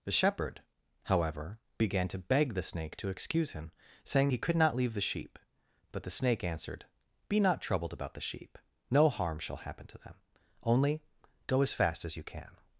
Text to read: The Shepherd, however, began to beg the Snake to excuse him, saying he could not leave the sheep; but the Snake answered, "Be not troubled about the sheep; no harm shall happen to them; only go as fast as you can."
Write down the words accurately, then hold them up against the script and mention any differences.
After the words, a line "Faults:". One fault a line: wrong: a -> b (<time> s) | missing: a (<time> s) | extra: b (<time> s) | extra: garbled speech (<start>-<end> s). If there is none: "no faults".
The Shepherd, however, began to beg the Snake to excuse him, saying he could not leave the sheep; but the Snake answered, "Be not troubled about the sheep; no harm shall happen to them; only go as fast as you can."
Faults:
no faults